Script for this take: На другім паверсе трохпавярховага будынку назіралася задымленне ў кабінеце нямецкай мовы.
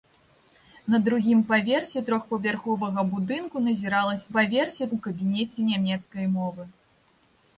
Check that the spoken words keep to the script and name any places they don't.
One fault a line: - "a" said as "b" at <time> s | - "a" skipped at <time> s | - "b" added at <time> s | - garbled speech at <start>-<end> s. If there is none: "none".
- "задымленне" said as "паверсе" at 4.4 s